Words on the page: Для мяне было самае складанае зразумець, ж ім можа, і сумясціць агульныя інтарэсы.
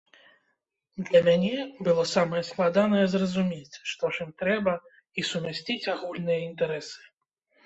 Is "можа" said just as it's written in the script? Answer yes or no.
no